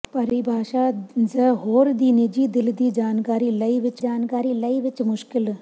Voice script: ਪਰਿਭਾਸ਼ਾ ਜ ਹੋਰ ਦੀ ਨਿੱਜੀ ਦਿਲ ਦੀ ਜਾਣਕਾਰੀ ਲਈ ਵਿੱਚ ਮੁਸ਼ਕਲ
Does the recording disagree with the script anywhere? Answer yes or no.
yes